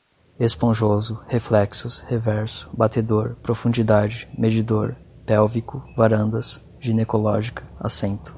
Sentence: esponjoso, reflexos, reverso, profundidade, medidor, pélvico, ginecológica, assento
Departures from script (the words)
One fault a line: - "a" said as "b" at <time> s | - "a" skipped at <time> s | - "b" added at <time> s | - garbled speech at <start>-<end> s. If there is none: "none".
- "batedor" added at 2.7 s
- "varandas" added at 6.0 s